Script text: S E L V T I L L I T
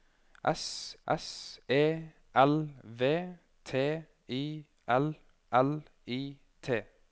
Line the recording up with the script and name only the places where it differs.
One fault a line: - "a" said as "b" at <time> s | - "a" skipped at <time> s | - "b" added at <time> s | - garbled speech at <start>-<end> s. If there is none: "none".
- "s" added at 1.1 s